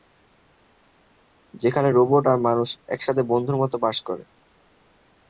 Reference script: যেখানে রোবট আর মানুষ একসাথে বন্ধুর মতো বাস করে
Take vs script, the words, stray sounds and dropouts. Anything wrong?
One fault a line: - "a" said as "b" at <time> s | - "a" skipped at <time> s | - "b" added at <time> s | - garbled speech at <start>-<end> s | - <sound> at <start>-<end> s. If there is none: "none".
none